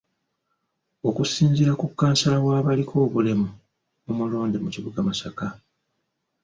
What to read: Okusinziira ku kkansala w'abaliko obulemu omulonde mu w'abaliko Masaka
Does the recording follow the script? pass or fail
fail